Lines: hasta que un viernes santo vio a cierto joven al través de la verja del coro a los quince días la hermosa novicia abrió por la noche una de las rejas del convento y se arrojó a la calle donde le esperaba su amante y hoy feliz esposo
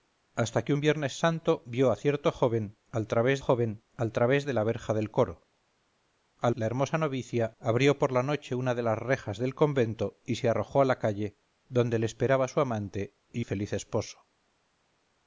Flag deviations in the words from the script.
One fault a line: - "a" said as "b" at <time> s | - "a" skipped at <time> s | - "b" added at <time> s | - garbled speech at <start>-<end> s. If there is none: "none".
- "joven al través" added at 3.4 s
- "los quince días" skipped at 6.5 s
- "hoy" skipped at 13.5 s